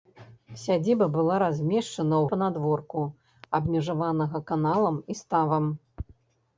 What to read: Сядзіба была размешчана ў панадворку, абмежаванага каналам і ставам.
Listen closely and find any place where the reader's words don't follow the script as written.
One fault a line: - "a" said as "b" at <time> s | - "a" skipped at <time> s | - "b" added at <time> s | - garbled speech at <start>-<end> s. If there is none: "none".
none